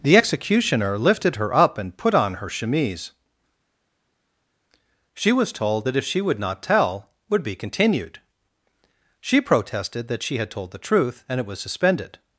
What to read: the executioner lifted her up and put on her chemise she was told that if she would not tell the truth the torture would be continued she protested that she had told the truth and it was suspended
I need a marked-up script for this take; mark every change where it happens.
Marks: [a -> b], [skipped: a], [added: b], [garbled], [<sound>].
the executioner lifted her up and put on her chemise she was told that if she would not tell [skipped: the truth the torture] would be continued she protested that she had told the truth and it was suspended